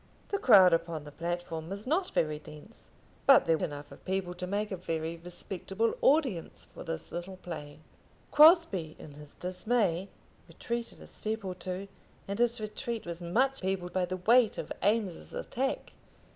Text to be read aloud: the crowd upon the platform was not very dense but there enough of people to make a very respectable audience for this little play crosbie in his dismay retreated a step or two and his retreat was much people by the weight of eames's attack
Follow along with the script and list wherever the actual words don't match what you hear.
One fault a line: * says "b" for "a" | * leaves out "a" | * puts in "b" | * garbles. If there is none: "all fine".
all fine